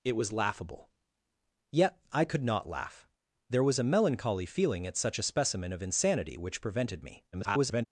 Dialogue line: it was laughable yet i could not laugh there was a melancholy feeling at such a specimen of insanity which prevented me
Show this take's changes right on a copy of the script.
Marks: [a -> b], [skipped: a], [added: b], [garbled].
it was laughable yet i could not laugh there was a melancholy feeling at such a specimen of insanity which prevented me [garbled]